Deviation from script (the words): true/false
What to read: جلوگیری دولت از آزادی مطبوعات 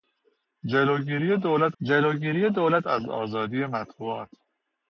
true